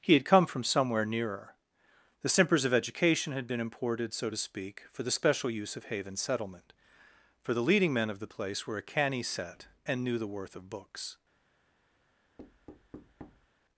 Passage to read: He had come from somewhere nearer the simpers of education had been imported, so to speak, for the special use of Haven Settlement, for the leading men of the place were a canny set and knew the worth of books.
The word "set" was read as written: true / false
true